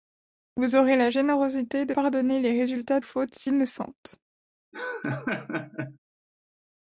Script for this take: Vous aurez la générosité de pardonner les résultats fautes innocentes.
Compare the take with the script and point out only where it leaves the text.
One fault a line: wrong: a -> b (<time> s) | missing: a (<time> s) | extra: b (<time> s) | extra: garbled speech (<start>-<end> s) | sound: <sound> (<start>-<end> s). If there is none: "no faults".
sound: laugh (4.7-6.0 s)